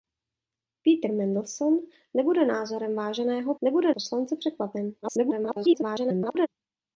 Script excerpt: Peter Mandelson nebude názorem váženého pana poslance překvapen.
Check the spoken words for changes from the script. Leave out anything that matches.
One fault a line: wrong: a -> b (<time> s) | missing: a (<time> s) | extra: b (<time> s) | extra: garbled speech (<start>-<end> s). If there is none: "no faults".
wrong: pana -> nebude (3.6 s)
extra: garbled speech (5.0-6.5 s)